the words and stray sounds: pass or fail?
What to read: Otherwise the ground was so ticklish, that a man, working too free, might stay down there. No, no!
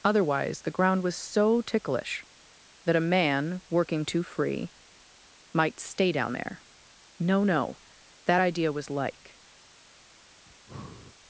fail